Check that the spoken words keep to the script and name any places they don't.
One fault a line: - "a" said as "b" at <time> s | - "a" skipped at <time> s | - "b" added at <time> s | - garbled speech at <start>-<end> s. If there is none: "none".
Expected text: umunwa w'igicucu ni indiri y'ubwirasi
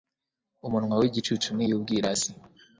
- "indiri" skipped at 1.6 s